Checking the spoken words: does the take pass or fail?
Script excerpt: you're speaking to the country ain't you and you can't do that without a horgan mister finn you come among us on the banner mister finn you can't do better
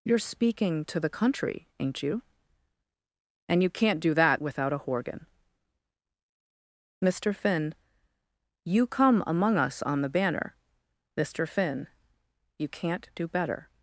pass